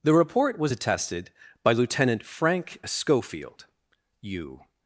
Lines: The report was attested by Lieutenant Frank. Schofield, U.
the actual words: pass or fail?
pass